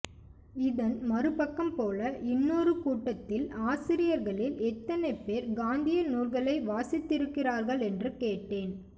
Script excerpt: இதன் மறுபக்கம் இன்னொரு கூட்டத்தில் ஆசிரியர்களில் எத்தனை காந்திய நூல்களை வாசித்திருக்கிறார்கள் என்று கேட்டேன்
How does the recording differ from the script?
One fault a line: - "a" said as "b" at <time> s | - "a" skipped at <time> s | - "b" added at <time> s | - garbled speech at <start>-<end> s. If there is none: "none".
- "போல" added at 1.8 s
- "பேர்" added at 5.2 s